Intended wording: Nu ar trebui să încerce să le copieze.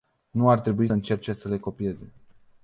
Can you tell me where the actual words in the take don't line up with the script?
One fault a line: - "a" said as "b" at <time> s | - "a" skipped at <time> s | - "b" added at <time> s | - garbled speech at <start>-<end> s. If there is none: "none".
- "să" skipped at 0.9 s